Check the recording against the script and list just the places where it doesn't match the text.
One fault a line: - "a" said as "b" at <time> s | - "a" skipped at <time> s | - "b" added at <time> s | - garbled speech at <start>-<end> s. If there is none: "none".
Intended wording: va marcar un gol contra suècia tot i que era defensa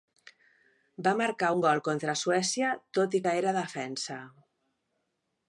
none